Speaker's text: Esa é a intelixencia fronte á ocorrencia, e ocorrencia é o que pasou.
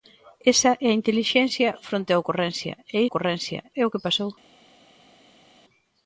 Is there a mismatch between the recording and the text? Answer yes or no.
no